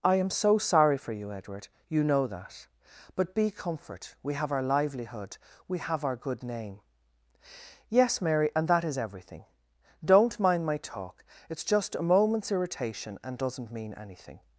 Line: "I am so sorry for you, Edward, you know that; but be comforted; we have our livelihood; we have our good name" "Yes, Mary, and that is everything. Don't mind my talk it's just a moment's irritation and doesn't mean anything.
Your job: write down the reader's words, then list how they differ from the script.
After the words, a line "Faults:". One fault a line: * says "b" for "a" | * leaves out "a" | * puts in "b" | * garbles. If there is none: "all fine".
"I am so sorry for you, Edward, you know that; but be comfort; we have our livelihood; we have our good name" "Yes, Mary, and that is everything. Don't mind my talk it's just a moment's irritation and doesn't mean anything.
Faults:
* says "comfort" for "comforted"